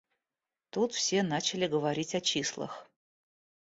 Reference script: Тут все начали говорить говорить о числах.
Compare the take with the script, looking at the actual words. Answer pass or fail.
fail